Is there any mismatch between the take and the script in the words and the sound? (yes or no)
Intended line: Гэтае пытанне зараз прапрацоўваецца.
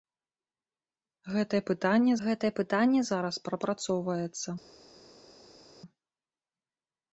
yes